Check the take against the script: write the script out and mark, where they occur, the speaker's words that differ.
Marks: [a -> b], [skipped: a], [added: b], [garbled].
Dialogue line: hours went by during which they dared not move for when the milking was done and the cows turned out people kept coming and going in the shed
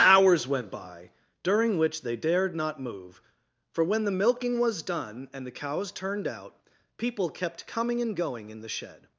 hours went by during which they dared not move for when the milking was done and the cows turned out people kept coming and going in the shed